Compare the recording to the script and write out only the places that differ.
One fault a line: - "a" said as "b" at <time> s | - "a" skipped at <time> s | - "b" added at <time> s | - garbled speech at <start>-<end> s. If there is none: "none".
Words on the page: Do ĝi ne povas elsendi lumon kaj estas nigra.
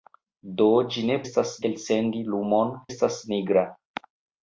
- "povas" said as "estas" at 1.3 s
- "kaj" skipped at 2.8 s